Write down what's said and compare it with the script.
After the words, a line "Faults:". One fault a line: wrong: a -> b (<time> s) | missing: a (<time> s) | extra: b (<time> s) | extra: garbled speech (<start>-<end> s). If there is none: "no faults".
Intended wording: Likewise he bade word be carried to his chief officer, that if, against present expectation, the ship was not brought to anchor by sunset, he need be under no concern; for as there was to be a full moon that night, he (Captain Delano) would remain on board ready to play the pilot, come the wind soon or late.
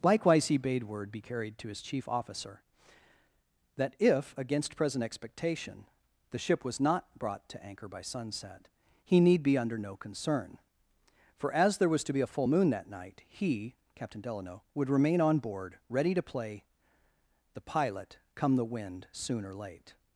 Likewise he bade word be carried to his chief officer, that if, against present expectation, the ship was not brought to anchor by sunset, he need be under no concern; for as there was to be a full moon that night, he (Captain Delano) would remain on board ready to play the pilot, come the wind soon or late.
Faults:
no faults